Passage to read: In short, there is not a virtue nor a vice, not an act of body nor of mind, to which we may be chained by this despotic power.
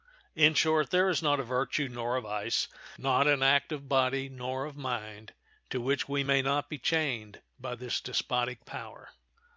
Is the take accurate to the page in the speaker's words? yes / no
no